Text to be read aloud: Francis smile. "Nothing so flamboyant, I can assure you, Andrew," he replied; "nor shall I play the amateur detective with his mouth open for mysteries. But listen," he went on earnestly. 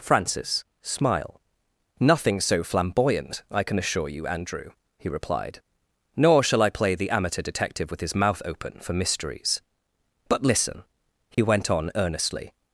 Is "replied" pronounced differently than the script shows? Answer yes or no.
no